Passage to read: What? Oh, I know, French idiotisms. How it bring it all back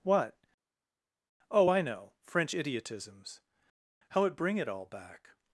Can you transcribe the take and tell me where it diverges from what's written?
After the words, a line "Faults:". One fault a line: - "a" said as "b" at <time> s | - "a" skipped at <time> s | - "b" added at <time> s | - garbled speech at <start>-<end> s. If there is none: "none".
What? Oh, I know, French idiotisms. How it bring it all back
Faults:
none